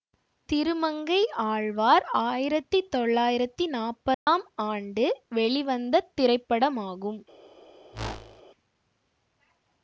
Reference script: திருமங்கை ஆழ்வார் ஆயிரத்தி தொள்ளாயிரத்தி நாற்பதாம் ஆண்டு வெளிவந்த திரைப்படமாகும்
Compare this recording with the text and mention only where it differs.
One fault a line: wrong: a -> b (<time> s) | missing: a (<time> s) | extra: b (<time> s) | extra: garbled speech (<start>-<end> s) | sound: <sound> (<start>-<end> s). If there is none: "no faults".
sound: dropout (4.1-4.3 s)
sound: whoosh (7.9-8.4 s)